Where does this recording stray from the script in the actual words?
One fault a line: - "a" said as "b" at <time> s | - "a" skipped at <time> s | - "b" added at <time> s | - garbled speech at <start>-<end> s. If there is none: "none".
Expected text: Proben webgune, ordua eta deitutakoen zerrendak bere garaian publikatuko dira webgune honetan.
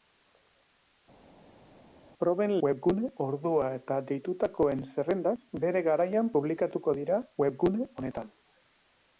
none